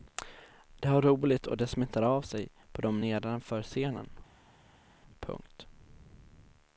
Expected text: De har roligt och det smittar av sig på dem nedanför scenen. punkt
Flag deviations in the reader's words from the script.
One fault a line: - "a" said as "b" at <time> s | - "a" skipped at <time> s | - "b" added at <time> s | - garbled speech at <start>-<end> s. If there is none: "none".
none